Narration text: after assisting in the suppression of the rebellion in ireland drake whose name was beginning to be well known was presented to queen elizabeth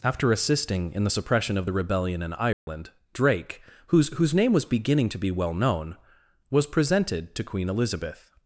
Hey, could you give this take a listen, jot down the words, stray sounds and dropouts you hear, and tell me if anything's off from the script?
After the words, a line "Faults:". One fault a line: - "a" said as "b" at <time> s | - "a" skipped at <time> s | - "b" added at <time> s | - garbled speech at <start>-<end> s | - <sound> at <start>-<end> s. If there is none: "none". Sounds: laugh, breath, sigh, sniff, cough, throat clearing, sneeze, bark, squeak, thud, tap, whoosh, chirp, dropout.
after assisting in the suppression of the rebellion in ireland drake whose whose name was beginning to be well known was presented to queen elizabeth
Faults:
- dropout at 2.5-2.7 s
- "whose" added at 4.1 s